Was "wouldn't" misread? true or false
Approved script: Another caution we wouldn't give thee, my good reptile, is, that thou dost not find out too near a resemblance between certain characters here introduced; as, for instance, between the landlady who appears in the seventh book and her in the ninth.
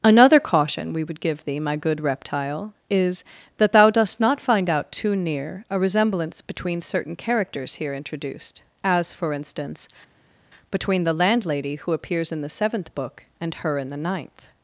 true